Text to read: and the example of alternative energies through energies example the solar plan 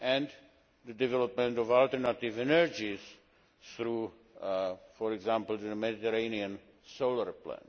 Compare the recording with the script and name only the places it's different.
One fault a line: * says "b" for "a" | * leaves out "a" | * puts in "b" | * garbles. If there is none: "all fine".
* says "development" for "example"
* says "for" for "energies"
* puts in "mediterranean"